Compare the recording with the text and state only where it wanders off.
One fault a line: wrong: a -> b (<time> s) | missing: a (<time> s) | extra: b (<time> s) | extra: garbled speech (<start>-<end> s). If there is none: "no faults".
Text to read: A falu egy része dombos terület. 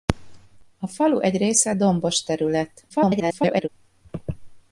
extra: garbled speech (2.9-3.7 s)